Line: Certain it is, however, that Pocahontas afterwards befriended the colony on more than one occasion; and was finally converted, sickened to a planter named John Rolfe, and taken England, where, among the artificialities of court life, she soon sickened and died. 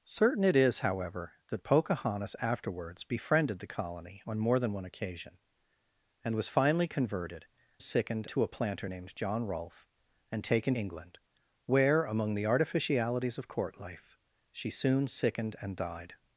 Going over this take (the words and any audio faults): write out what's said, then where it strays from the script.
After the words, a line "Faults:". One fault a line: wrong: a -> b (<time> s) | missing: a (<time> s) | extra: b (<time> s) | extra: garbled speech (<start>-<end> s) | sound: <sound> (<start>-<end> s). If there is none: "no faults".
Certain it is, however, that Pocahontas afterwards befriended the colony on more than one occasion; and was finally converted, sickened to a planter named John Rolfe, and taken England, where, among the artificialities of court life, she soon sickened and died.
Faults:
no faults